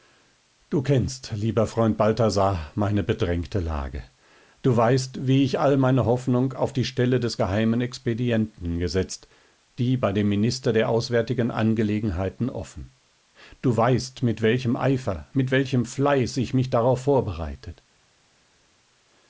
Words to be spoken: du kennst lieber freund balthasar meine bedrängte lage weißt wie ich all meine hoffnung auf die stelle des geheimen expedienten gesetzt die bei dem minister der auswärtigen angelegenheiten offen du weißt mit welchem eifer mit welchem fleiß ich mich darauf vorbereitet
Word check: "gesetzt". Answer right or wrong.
right